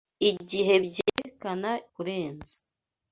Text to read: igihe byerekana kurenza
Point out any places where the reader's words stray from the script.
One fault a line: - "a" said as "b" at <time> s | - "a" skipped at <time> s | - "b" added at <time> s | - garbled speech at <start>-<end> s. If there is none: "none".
none